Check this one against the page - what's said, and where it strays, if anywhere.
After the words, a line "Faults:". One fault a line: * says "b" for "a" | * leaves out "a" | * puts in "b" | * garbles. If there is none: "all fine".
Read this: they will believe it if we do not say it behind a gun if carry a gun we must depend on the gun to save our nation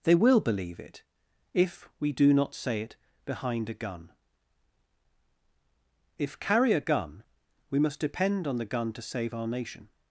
they will believe it if we do not say it behind a gun if carry a gun we must depend on the gun to save our nation
Faults:
all fine